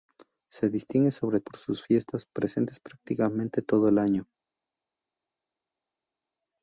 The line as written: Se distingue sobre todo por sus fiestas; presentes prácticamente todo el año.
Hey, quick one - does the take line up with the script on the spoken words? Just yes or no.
no